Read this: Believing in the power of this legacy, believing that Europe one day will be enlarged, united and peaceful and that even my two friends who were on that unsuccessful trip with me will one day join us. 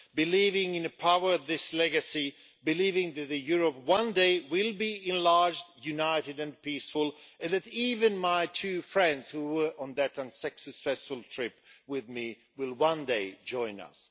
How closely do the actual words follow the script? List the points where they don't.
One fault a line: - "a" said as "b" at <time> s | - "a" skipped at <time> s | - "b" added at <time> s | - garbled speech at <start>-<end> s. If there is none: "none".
none